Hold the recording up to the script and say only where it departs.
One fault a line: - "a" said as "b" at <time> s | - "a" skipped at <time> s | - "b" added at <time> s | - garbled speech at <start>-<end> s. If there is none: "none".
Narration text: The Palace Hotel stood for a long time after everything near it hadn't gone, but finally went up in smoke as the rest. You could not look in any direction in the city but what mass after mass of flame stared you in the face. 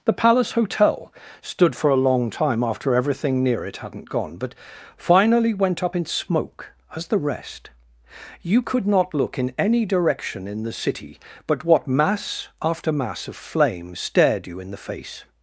none